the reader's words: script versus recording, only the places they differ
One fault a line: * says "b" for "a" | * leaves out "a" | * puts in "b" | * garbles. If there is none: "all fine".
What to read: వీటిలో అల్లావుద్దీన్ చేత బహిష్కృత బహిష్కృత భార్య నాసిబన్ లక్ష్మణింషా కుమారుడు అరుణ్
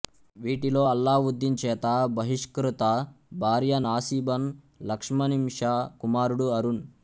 * leaves out "బహిష్కృత"